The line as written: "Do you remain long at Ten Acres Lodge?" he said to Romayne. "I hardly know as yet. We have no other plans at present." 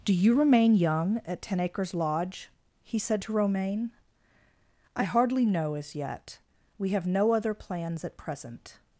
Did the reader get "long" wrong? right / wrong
wrong